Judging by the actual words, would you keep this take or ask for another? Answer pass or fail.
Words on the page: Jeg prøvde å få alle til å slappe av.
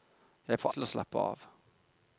fail